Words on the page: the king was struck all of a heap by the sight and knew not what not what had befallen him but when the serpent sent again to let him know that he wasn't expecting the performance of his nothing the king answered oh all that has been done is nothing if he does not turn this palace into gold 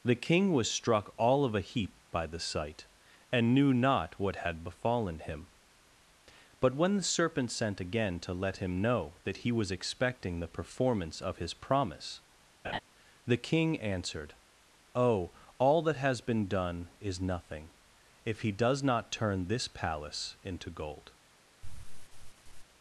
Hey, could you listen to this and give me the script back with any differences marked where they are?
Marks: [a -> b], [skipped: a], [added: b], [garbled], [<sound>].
the king was struck all of a heap by the sight and knew not what [skipped: not what] had befallen him but when the serpent sent again to let him know that he [wasn't -> was] expecting the performance of his [nothing -> promise] [laugh] the king answered oh all that has been done is nothing if he does not turn this palace into gold [sigh]